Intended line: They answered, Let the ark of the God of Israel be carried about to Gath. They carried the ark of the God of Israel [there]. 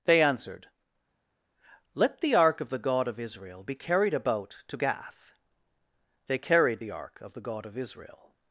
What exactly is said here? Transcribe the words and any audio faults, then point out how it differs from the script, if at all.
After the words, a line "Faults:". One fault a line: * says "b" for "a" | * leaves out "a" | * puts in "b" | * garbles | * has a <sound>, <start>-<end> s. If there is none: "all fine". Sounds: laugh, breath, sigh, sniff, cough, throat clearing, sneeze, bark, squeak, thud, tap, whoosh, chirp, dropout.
They answered, Let the ark of the God of Israel be carried about to Gath. They carried the ark of the God of Israel].
Faults:
* leaves out "there"